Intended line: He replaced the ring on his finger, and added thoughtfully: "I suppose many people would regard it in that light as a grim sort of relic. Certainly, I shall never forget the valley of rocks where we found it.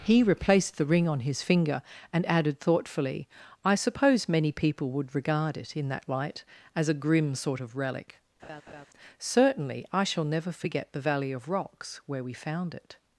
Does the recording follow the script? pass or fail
pass